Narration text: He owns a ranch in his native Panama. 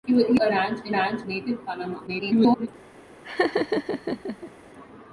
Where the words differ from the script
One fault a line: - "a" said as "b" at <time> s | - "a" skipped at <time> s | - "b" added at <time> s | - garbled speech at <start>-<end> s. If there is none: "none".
- "owns" skipped at 0.4 s
- "his" said as "ranch" at 0.9 s
- garbled speech at 2.1-2.7 s